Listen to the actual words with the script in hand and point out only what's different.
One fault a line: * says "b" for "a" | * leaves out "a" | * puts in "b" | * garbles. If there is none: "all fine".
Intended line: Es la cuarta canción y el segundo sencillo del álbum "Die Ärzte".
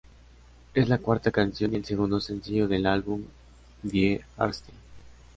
all fine